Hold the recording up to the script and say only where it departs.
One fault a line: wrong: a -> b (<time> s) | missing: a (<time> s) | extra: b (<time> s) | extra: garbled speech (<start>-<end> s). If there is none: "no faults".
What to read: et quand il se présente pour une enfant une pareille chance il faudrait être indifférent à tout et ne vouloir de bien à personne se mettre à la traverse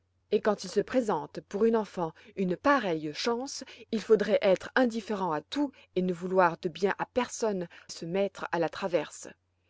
no faults